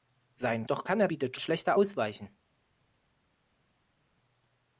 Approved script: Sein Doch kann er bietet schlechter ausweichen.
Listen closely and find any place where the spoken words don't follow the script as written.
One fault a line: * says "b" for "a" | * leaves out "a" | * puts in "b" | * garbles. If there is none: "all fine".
all fine